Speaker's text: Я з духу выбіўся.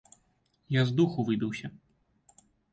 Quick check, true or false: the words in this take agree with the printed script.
true